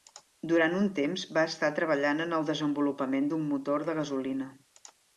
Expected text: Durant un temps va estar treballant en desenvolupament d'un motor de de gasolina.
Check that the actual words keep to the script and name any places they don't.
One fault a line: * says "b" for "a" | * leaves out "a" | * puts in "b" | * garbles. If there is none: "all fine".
* puts in "el"
* leaves out "de"